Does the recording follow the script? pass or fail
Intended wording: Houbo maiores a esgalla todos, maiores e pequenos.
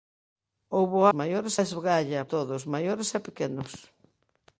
pass